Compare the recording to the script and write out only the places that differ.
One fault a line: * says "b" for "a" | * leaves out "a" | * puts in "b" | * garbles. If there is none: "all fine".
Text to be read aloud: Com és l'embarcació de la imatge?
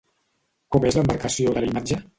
all fine